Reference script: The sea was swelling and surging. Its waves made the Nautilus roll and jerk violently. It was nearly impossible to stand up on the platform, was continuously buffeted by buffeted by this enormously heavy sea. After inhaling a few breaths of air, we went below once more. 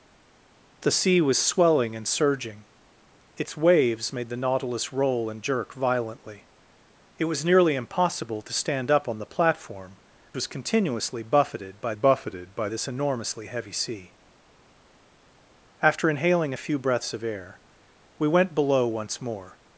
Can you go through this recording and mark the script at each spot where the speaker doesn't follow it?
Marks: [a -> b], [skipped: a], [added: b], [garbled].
The sea was swelling and surging. Its waves made the Nautilus roll and jerk violently. It was nearly impossible to stand up on the platform, was continuously buffeted by buffeted by this enormously heavy sea. After inhaling a few breaths of air, we went below once more.